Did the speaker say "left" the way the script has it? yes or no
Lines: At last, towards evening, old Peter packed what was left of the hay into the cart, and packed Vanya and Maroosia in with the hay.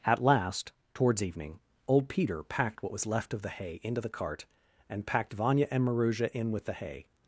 yes